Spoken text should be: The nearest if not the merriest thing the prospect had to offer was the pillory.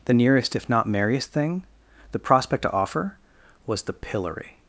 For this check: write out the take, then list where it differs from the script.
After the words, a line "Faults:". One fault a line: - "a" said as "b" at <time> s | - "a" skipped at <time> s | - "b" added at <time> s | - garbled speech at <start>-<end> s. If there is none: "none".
The nearest if not merriest thing the prospect to offer was the pillory.
Faults:
- "the" skipped at 0.9 s
- "had" skipped at 2.6 s